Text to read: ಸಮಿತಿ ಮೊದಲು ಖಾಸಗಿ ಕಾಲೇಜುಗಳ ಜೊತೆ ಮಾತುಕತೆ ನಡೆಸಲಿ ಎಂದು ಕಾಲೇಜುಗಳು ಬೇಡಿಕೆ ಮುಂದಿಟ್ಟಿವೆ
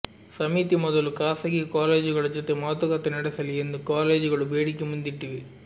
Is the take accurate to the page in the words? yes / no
yes